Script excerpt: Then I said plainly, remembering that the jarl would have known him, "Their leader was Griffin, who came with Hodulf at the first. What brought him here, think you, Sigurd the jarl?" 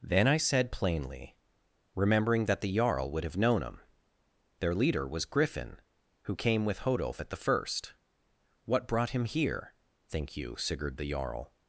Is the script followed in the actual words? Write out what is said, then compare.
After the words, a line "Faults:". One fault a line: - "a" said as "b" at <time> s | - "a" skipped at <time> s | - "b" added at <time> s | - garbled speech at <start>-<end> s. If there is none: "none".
Then I said plainly, remembering that the jarl would have known him, "Their leader was Griffin, who came with Hodulf at the first. What brought him here, think you, Sigurd the jarl?"
Faults:
none